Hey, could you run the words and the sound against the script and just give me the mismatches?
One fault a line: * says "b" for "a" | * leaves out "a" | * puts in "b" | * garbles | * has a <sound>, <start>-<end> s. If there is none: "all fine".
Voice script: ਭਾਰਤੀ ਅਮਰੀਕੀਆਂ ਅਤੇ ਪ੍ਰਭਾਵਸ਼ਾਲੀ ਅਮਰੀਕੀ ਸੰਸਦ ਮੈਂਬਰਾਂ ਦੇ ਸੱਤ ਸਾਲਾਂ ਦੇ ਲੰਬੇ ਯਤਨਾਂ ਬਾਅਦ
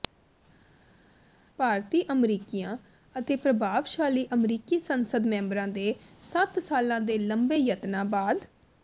all fine